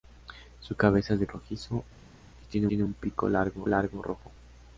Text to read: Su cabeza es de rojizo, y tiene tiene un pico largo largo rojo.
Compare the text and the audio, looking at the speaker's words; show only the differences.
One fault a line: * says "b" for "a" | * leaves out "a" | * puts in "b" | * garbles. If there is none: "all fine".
all fine